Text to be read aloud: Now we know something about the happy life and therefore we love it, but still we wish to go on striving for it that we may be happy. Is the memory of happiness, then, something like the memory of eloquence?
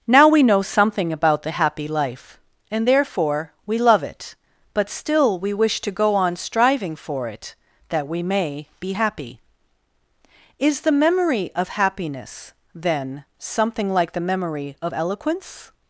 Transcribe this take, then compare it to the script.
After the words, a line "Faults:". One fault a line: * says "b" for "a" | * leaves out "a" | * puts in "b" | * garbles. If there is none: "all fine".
Now we know something about the happy life and therefore we love it, but still we wish to go on striving for it that we may be happy. Is the memory of happiness, then, something like the memory of eloquence?
Faults:
all fine